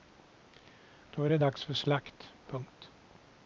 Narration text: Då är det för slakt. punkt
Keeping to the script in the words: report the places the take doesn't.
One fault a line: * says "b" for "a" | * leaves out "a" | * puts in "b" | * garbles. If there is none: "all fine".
* puts in "dags"